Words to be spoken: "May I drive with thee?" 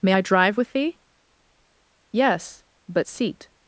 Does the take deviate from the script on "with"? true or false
false